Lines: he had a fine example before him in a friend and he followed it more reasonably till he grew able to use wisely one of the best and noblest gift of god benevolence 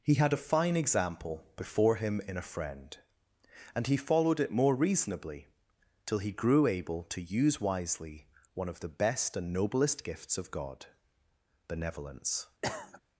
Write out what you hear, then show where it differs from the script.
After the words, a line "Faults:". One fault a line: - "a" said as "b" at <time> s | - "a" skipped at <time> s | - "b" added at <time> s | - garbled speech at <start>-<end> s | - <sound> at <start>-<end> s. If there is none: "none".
he had a fine example before him in a friend and he followed it more reasonably till he grew able to use wisely one of the best and noblest gifts of god benevolence
Faults:
- "gift" said as "gifts" at 10.0 s
- cough at 12.6-13.0 s